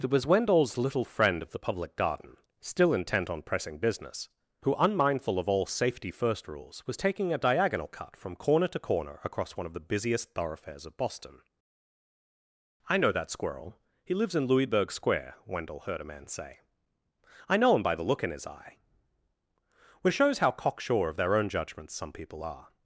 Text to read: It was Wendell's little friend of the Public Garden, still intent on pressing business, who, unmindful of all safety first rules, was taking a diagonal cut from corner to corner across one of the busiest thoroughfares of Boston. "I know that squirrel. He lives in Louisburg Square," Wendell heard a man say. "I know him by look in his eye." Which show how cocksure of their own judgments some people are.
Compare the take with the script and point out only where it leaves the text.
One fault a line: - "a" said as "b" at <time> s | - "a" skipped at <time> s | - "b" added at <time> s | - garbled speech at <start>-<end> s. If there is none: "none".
- "the" added at 17.9 s
- "show" said as "shows" at 20.1 s